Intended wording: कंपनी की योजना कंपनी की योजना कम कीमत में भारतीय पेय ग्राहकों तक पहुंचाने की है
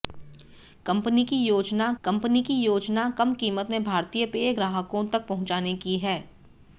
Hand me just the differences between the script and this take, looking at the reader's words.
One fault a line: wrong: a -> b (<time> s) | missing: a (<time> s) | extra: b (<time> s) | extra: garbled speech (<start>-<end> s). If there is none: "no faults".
no faults